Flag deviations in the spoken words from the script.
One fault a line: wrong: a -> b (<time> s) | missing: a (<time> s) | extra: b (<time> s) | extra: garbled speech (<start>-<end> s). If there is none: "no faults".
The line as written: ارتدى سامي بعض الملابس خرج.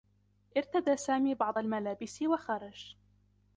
extra: و (2.2 s)